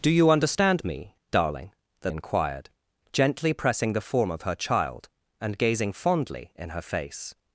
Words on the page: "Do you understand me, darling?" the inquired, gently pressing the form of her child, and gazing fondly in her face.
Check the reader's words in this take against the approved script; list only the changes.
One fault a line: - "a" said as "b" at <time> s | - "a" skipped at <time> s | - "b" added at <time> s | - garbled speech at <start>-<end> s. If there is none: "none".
none